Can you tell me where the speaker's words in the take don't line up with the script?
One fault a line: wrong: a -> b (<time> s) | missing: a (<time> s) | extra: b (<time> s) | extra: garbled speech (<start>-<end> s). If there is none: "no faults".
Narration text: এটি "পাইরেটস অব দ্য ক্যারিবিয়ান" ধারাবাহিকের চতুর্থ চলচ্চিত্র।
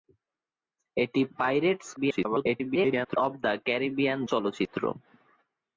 extra: garbled speech (2.0-3.2 s)
missing: ধারাবাহিকের চতুর্থ (4.2 s)